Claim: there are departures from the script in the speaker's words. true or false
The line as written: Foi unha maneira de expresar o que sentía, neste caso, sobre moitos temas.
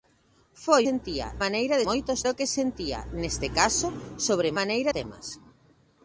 true